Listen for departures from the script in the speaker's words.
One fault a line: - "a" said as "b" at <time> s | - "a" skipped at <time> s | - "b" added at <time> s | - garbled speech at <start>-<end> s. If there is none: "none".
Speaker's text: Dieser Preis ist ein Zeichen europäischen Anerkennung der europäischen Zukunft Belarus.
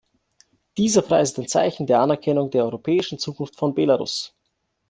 - "europäischen" said as "der" at 1.9 s
- "von" added at 3.5 s